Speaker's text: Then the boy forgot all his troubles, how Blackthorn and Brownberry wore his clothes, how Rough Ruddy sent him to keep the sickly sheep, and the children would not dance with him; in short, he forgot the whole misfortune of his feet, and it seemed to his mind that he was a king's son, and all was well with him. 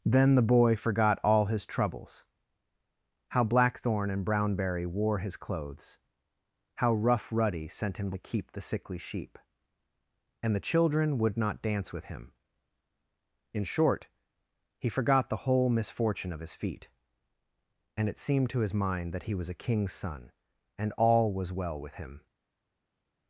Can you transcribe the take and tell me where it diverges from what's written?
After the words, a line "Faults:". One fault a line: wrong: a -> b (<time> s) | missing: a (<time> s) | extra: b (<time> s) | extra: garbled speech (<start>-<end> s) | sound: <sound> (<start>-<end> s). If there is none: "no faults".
Then the boy forgot all his troubles, how Blackthorn and Brownberry wore his clothes, how Rough Ruddy sent him to keep the sickly sheep, and the children would not dance with him; in short, he forgot the whole misfortune of his feet, and it seemed to his mind that he was a king's son, and all was well with him.
Faults:
no faults